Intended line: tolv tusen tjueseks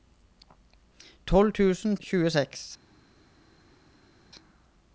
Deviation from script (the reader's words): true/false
false